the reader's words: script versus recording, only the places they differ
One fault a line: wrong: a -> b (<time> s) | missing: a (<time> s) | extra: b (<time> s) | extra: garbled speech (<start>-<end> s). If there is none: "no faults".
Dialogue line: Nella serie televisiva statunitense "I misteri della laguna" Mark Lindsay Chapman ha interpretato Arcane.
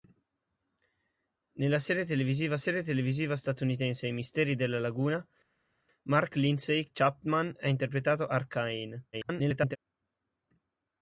extra: serie televisiva (2.6 s)
extra: garbled speech (9.1-9.8 s)